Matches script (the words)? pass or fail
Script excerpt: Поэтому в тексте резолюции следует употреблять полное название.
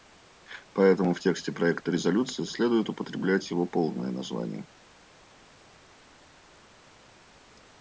fail